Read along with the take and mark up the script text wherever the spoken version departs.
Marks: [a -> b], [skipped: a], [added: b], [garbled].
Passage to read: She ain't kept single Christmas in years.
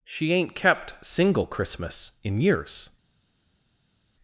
She ain't kept single Christmas in years.